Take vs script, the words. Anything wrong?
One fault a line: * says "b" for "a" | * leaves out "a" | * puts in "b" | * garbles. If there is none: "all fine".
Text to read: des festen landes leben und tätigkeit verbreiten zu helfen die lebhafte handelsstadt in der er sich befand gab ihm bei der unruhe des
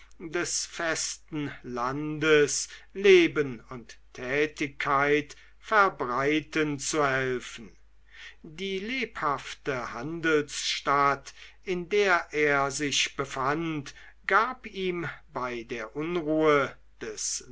all fine